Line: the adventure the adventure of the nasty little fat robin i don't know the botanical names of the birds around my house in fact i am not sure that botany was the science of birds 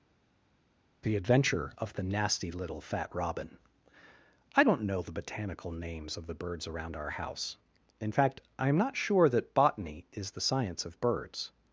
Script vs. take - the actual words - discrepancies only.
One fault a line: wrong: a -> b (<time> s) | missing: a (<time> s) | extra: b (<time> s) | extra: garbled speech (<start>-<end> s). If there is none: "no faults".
missing: the adventure (1.7 s)
wrong: my -> our (7.0 s)
wrong: was -> is (10.1 s)